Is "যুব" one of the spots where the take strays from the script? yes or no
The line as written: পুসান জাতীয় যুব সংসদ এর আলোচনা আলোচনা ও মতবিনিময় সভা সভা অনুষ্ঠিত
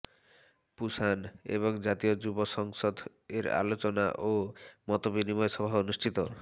no